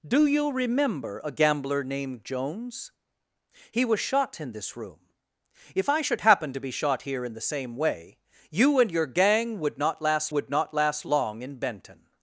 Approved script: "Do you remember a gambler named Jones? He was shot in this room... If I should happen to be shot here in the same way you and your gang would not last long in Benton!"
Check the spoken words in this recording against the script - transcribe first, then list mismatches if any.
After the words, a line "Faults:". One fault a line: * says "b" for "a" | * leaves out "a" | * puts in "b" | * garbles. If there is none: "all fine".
"Do you remember a gambler named Jones? He was shot in this room... If I should happen to be shot here in the same way you and your gang would not last would not last long in Benton!"
Faults:
* puts in "would not last"